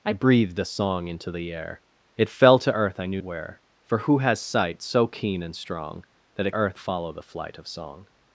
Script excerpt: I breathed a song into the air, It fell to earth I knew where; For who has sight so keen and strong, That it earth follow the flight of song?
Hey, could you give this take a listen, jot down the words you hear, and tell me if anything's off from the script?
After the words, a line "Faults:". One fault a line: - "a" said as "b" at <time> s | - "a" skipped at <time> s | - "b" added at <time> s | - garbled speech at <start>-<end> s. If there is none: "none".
I breathed a song into the air, It fell to earth I knew where; For who has sight so keen and strong, That it earth follow the flight of song?
Faults:
none